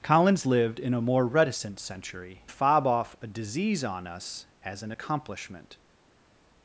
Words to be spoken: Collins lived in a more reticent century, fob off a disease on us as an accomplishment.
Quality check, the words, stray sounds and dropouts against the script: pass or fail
pass